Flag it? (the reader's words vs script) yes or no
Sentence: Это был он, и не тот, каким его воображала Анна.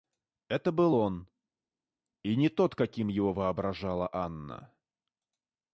no